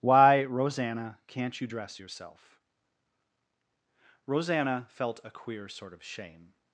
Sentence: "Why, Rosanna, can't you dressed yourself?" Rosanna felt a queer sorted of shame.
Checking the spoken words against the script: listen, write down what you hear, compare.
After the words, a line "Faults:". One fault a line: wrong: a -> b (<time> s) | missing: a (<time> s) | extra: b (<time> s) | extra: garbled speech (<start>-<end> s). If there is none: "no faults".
"Why, Rosanna, can't you dress yourself?" Rosanna felt a queer sort of shame.
Faults:
wrong: dressed -> dress (1.6 s)
wrong: sorted -> sort (5.7 s)